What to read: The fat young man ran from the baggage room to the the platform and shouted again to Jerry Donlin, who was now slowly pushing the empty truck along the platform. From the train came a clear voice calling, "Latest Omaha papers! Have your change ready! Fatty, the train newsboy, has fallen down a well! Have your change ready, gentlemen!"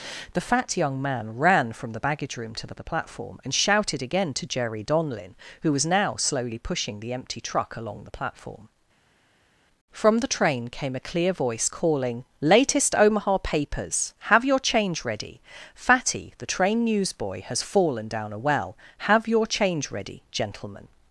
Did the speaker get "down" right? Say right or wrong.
right